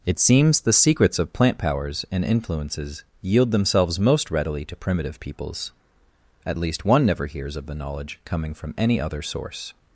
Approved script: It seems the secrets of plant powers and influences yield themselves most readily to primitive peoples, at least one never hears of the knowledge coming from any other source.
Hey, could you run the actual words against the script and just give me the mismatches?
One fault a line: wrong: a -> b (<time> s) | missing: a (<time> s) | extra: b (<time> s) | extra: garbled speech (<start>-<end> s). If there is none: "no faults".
no faults